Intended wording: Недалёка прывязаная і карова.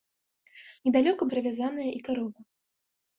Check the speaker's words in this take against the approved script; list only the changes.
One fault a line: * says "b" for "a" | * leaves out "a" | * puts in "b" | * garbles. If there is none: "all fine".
all fine